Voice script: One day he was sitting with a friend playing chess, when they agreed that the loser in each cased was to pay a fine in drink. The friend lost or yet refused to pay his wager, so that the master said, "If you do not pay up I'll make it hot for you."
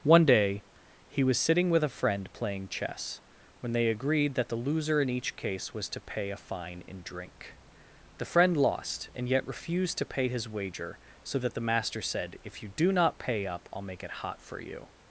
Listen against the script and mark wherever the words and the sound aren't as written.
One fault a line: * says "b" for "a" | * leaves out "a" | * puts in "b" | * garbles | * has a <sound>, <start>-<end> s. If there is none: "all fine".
* says "case" for "cased"
* says "and" for "or"